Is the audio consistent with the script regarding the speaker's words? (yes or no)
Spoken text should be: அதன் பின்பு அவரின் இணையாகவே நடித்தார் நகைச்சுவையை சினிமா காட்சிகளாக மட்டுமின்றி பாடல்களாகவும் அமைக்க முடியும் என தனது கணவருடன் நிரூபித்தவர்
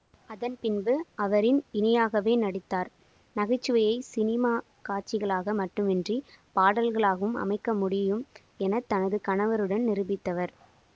yes